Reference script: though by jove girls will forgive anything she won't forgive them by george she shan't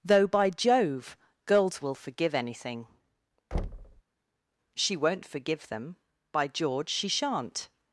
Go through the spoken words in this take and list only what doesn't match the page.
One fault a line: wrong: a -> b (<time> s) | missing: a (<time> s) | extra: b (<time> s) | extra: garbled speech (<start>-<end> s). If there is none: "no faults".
no faults